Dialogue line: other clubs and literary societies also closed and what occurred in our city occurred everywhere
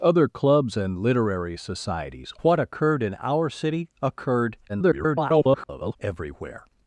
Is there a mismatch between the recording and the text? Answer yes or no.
yes